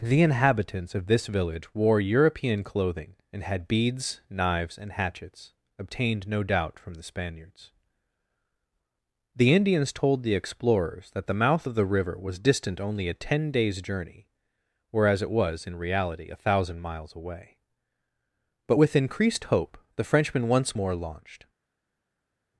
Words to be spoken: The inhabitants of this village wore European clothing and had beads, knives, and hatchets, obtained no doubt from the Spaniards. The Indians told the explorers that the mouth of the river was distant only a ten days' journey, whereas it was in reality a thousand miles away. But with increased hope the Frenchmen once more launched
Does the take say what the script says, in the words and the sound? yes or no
yes